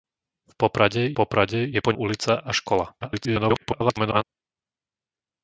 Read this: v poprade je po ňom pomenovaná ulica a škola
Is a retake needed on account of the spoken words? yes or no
yes